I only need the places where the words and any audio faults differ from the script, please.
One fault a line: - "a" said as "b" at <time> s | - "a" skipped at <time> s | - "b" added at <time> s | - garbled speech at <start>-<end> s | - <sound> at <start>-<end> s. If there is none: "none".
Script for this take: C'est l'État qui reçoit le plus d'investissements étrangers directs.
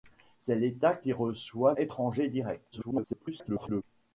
- "le plus d'investissements" skipped at 1.8 s
- garbled speech at 2.7-3.8 s